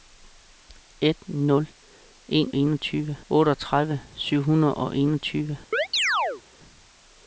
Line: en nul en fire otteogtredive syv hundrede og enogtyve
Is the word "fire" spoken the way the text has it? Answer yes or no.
no